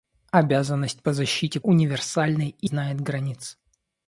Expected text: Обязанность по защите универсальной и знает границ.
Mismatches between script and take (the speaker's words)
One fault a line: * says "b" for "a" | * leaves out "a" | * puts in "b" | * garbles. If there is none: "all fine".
all fine